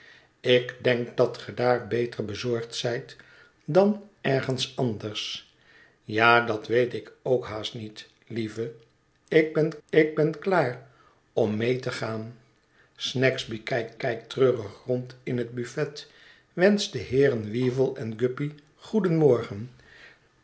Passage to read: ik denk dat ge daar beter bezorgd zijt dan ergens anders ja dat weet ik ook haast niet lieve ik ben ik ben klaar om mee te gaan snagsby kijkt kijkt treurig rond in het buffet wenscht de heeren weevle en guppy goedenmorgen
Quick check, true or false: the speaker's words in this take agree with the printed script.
true